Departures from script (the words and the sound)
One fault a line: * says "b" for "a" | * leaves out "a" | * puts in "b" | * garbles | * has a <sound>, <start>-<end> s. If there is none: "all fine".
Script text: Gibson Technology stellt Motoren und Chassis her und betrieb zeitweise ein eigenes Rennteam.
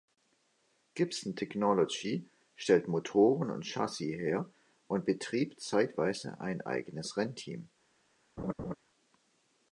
* has a laugh, 8.4-8.8 s